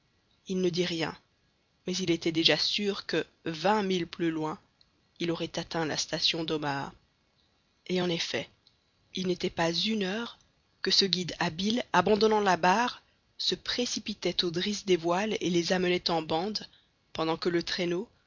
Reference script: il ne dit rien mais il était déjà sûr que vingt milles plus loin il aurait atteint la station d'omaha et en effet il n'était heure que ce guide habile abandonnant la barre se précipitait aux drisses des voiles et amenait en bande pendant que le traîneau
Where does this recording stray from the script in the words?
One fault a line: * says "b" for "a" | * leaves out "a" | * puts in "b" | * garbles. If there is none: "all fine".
* puts in "pas une"
* puts in "les"